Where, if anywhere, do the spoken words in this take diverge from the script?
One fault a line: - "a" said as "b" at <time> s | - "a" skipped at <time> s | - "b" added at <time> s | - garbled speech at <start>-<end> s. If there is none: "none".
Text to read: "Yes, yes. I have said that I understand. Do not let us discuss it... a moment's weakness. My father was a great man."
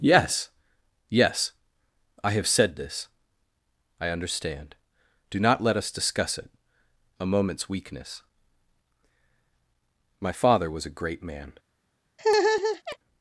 - "that" said as "this" at 2.8 s